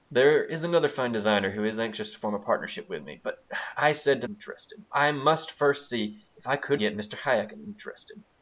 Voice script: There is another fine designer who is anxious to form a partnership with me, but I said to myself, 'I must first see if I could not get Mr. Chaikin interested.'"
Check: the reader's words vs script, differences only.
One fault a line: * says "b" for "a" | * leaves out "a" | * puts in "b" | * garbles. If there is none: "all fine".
* says "interested" for "myself"
* leaves out "not"